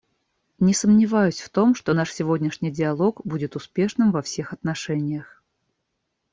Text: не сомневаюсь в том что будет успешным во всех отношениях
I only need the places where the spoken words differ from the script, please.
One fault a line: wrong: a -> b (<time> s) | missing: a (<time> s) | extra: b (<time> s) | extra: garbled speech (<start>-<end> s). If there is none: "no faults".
extra: наш сегодняшний диалог (1.9 s)